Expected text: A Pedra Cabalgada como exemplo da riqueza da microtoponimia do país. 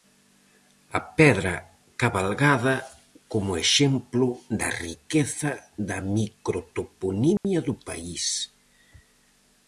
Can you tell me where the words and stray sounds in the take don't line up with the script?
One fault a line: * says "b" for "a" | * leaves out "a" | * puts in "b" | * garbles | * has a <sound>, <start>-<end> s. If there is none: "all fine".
* has a dropout, 7.4-7.4 s